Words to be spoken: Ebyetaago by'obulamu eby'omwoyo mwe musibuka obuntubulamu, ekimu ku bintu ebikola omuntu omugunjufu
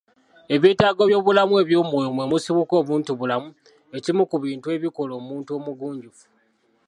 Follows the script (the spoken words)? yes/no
yes